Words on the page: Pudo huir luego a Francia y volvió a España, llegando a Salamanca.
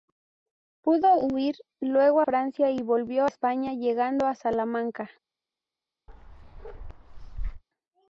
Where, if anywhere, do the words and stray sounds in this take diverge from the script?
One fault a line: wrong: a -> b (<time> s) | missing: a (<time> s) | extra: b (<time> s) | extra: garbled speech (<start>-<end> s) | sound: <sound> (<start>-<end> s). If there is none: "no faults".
missing: a (2.2 s)
missing: a (3.3 s)
sound: bark (6.1-7.6 s)